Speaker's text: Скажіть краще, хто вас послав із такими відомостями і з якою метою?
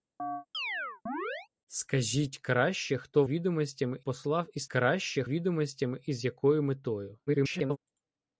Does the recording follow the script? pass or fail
fail